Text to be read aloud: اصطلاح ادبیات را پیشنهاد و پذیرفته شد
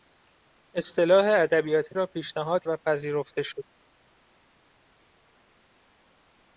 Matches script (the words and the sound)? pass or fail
pass